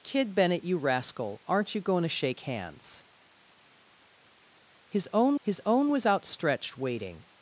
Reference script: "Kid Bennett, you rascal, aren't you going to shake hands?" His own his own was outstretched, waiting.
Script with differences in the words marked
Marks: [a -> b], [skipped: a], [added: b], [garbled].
"Kid Bennett, you rascal, aren't you going to shake hands?" His own his own was outstretched, waiting.